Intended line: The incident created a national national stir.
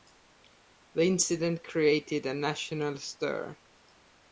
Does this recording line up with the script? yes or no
no